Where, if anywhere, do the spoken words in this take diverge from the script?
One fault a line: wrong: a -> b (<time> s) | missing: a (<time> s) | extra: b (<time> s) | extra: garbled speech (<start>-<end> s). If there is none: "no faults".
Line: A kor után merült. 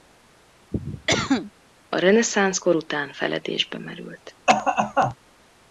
extra: reneszánsz (2.0 s)
extra: feledésbe (3.1 s)